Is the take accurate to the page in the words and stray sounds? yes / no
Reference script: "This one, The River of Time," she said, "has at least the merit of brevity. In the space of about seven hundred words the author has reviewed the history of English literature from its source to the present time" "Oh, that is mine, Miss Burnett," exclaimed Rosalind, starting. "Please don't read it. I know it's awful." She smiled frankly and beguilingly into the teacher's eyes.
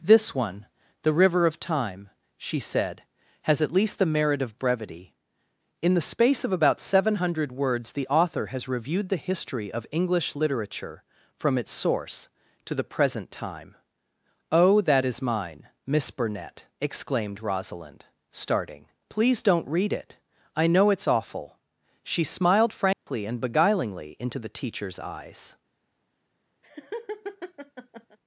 no